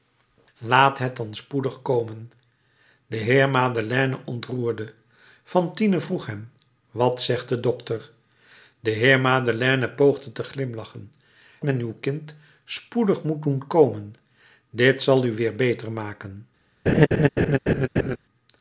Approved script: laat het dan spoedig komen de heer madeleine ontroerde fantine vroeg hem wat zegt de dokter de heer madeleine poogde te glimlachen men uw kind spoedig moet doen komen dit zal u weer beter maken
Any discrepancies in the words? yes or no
no